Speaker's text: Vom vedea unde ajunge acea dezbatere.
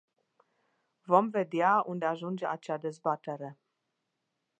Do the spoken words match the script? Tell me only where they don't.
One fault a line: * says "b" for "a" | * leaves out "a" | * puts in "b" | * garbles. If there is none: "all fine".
all fine